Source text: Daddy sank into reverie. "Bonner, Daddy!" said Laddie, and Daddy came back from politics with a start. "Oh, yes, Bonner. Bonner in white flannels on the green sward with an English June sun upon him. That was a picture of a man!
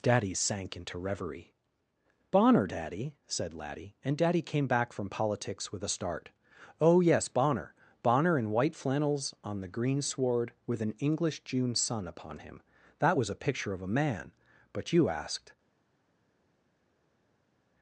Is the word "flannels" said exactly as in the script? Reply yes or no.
yes